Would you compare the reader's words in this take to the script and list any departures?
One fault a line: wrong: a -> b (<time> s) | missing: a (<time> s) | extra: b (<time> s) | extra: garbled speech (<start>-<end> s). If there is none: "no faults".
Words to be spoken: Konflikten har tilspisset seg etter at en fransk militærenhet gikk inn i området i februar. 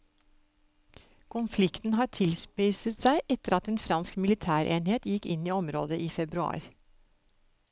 no faults